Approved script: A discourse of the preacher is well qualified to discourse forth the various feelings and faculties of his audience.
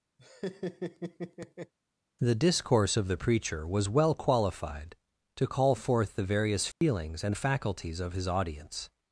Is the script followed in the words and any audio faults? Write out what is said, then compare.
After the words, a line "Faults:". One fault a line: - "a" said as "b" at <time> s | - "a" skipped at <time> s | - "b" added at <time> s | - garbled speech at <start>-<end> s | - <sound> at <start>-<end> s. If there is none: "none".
The discourse of the preacher was well qualified to call forth the various feelings and faculties of his audience.
Faults:
- laugh at 0.2-1.7 s
- "A" said as "The" at 2.2 s
- "is" said as "was" at 3.7 s
- "discourse" said as "call" at 5.5 s
- dropout at 6.7-6.8 s